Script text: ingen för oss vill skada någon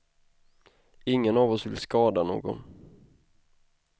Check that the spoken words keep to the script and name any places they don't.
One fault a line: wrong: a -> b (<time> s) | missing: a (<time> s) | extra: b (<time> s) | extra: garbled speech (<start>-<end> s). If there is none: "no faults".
wrong: för -> av (1.4 s)